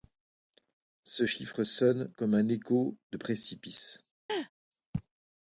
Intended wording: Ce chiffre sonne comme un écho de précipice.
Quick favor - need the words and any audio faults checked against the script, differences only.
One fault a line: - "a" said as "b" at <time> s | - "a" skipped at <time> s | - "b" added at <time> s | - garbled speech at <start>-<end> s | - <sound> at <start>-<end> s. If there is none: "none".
- laugh at 4.3-4.5 s